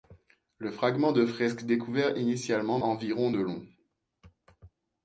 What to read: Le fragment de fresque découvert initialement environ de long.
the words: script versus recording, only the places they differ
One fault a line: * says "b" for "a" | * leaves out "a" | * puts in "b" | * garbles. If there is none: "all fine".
all fine